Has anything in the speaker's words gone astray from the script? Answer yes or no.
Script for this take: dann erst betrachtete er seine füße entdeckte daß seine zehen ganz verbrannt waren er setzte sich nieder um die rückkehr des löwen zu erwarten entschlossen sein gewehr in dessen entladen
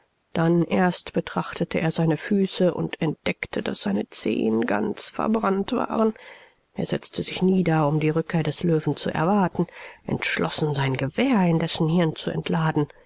yes